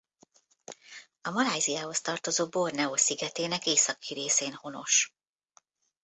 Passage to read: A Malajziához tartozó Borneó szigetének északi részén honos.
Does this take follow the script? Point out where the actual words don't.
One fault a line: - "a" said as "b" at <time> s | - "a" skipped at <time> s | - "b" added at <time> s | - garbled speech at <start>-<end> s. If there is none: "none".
none